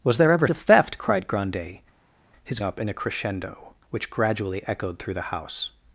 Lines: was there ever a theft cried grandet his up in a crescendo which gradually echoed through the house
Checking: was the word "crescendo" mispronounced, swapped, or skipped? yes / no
no